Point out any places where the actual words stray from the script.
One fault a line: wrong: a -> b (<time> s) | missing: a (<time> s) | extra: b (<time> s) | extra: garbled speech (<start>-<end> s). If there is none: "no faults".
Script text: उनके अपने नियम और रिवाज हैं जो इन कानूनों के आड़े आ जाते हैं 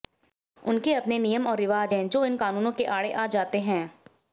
no faults